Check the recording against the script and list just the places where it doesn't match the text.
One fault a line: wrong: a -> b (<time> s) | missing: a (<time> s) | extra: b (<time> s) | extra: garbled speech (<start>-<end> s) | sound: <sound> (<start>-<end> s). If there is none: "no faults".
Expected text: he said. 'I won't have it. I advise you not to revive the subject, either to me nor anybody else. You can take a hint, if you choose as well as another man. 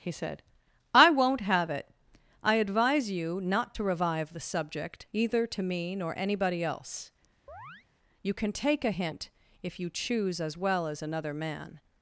sound: chirp (7.5-7.9 s)